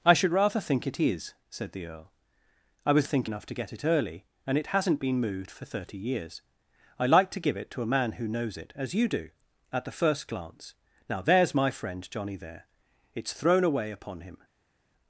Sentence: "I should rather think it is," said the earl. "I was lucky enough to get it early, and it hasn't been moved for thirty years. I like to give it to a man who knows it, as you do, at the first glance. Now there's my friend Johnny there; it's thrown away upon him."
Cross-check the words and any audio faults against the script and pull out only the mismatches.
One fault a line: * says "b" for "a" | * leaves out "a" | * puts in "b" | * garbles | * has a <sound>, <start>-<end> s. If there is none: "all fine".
* says "think" for "lucky"